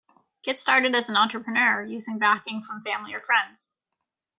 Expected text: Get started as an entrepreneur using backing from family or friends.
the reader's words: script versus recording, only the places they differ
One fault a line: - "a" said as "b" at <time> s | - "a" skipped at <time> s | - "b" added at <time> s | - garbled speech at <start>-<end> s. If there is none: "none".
none